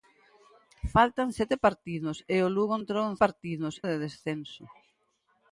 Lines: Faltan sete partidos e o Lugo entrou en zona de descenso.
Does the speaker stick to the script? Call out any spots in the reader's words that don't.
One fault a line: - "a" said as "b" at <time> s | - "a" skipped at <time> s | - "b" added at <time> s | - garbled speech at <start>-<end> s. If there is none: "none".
- "zona" said as "partidos" at 3.2 s